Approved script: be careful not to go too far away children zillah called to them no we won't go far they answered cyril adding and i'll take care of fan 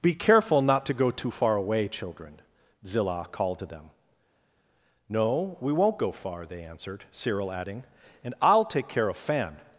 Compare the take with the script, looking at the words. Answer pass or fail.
pass